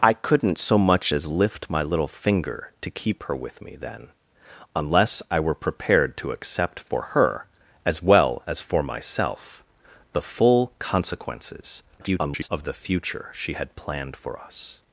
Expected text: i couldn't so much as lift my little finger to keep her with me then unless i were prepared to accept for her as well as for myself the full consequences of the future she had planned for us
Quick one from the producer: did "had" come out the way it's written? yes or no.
yes